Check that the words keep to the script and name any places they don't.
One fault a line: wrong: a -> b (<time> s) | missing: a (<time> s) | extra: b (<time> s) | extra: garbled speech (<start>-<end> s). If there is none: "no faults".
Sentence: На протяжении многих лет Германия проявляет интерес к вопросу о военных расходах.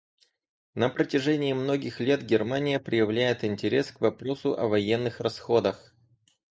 no faults